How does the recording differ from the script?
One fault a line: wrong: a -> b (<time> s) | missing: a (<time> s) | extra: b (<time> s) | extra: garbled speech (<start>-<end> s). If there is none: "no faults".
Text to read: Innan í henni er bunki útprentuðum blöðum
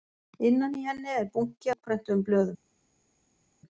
no faults